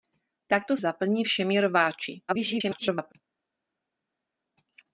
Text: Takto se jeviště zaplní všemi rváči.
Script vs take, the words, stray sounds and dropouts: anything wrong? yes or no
yes